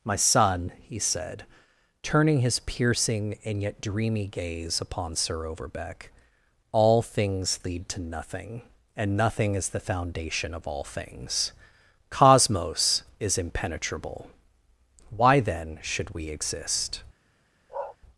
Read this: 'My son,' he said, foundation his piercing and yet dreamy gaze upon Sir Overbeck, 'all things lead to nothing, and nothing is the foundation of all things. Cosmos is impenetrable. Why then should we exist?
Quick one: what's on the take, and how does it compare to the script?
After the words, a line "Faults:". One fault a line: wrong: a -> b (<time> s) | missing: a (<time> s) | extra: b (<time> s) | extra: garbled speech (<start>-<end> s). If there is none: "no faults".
'My son,' he said, turning his piercing and yet dreamy gaze upon Sir Overbeck, 'all things lead to nothing, and nothing is the foundation of all things. Cosmos is impenetrable. Why then should we exist?
Faults:
wrong: foundation -> turning (2.0 s)